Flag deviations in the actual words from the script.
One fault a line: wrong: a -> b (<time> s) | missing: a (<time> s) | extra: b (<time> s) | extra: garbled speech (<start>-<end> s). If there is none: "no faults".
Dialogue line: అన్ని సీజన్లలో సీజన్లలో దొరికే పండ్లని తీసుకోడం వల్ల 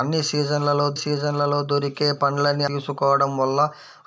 no faults